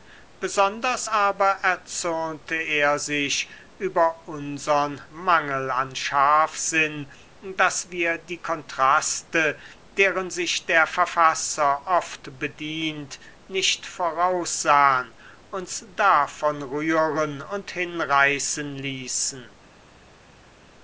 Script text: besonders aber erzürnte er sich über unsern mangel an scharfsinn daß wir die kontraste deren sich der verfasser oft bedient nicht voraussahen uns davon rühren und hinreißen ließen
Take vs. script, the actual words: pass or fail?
pass